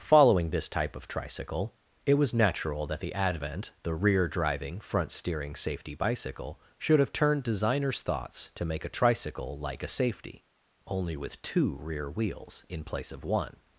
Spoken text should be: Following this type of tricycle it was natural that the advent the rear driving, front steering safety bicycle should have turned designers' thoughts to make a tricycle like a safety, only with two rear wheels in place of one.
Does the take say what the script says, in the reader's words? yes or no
yes